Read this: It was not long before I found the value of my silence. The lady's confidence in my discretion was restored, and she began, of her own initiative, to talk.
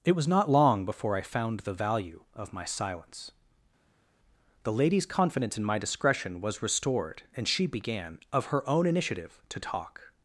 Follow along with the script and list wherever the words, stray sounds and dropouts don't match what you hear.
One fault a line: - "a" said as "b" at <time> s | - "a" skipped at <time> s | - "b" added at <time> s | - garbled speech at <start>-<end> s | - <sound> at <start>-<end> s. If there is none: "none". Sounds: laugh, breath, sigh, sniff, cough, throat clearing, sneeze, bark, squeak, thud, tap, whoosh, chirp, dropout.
none